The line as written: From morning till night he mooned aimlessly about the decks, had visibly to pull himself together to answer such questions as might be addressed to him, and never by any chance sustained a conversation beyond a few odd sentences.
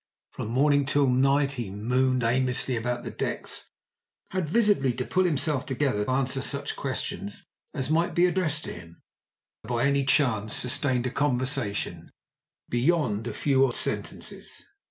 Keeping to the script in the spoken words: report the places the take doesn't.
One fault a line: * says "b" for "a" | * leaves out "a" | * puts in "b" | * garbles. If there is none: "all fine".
* leaves out "to"
* leaves out "and never"
* leaves out "odd"